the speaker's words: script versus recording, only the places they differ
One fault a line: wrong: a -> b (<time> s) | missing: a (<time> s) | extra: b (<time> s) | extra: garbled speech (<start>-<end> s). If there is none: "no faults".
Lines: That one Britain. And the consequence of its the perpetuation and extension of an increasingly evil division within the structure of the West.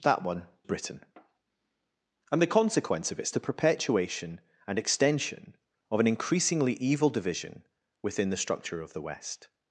no faults